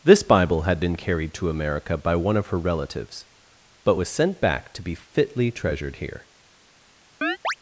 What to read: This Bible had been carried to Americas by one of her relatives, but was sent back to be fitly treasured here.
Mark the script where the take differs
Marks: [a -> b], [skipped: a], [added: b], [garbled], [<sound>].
This Bible had been carried to [Americas -> America] by one of her relatives, but was sent back to be fitly treasured here. [chirp]